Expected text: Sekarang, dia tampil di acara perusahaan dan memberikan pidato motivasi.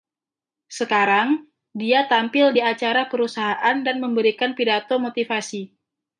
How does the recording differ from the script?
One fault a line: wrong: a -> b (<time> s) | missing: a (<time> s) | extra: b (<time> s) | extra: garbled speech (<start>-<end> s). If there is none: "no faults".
no faults